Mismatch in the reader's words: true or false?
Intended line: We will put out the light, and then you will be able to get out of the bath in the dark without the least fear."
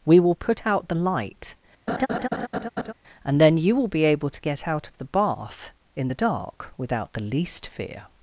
false